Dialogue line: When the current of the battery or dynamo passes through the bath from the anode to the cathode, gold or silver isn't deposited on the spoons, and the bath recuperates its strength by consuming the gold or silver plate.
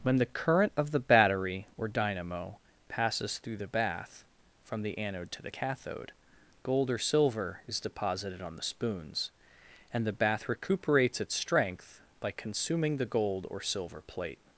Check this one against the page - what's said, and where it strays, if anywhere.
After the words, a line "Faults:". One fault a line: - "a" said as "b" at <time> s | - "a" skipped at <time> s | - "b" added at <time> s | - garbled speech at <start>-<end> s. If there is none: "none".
When the current of the battery or dynamo passes through the bath from the anode to the cathode, gold or silver is deposited on the spoons, and the bath recuperates its strength by consuming the gold or silver plate.
Faults:
- "isn't" said as "is" at 7.7 s